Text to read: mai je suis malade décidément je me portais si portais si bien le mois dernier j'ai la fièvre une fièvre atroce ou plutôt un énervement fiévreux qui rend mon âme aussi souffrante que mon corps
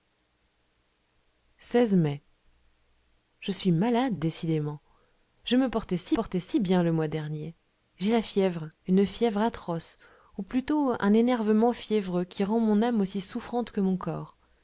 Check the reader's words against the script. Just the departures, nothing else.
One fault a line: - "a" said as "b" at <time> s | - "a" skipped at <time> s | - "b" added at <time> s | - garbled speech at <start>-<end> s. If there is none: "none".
none